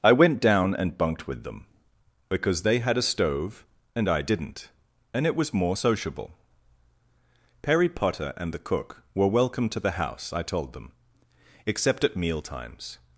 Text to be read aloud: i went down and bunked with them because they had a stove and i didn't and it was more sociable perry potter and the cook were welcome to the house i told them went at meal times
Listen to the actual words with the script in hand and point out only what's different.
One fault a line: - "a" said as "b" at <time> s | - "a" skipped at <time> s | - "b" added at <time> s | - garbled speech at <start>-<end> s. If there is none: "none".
- "went" said as "except" at 11.7 s